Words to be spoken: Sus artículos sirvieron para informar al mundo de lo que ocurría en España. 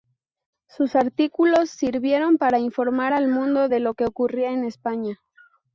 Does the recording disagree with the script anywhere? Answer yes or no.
no